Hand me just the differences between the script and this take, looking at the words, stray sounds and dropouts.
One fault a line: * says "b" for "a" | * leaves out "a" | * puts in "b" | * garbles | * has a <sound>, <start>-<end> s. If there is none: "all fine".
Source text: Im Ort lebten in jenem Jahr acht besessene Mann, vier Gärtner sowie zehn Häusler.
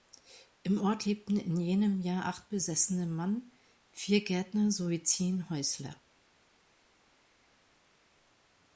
all fine